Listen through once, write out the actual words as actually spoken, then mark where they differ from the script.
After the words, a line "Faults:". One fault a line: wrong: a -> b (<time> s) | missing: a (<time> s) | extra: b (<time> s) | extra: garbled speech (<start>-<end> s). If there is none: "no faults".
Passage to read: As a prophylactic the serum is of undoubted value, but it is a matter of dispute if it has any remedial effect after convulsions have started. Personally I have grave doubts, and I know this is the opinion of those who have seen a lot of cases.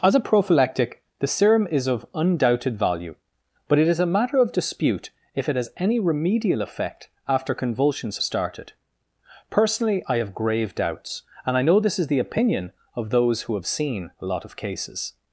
As a prophylactic the serum is of undoubted value, but it is a matter of dispute if it has any remedial effect after convulsions started. Personally I have grave doubts, and I know this is the opinion of those who have seen a lot of cases.
Faults:
missing: have (8.2 s)